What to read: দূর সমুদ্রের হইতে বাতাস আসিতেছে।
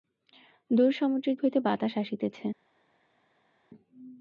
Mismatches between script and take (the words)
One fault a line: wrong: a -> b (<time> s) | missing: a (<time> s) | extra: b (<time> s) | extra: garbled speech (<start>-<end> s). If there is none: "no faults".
no faults